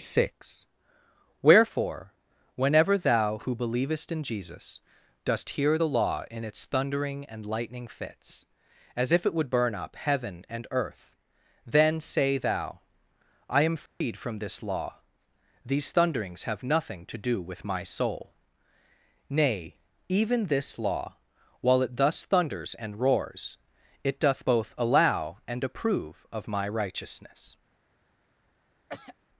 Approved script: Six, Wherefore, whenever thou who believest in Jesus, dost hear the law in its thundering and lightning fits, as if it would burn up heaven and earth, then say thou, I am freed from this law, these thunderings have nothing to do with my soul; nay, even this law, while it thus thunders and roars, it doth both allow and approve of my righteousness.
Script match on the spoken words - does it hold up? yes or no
yes